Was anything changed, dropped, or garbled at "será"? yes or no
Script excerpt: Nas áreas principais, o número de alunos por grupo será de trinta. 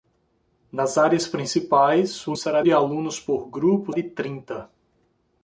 yes